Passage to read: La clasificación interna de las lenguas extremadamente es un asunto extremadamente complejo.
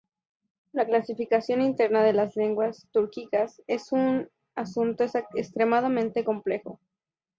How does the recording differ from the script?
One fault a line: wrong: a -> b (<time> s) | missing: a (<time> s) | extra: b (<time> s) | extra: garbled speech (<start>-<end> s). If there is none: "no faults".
wrong: extremadamente -> túrquicas (2.9 s)